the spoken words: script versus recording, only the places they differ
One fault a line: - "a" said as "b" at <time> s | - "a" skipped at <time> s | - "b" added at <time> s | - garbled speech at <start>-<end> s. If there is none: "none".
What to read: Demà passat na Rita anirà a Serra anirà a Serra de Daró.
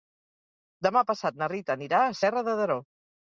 - "anirà a Serra" skipped at 2.4 s